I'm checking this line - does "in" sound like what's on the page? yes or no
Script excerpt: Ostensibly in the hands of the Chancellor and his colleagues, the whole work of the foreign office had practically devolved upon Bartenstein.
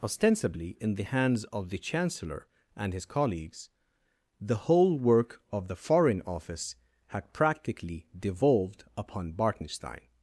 yes